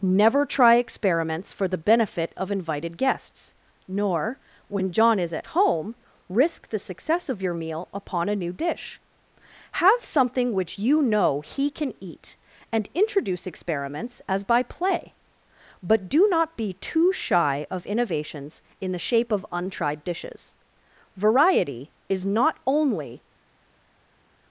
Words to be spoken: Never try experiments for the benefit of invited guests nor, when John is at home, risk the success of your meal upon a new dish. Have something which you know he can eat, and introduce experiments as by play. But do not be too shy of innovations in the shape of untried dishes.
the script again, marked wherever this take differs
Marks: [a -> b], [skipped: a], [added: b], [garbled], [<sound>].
Never try experiments for the benefit of invited guests nor, when John is at home, risk the success of your meal upon a new dish. Have something which you know he can eat, and introduce experiments as by play. But do not be too shy of innovations in the shape of untried dishes. [added: Variety is not only]